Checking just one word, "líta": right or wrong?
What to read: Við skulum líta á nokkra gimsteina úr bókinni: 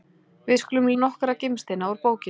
wrong